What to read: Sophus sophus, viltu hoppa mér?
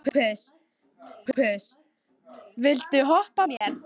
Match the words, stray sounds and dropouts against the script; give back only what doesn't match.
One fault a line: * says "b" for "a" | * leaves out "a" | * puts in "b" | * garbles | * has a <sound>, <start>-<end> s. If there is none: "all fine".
* has a dropout, 3.6-3.6 s